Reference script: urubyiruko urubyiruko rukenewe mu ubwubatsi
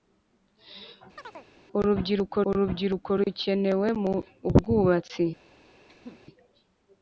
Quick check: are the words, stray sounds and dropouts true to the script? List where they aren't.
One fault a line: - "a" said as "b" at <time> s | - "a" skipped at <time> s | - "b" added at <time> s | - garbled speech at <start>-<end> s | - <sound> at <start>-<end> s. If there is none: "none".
- chirp at 1.2-1.5 s
- cough at 5.9-6.2 s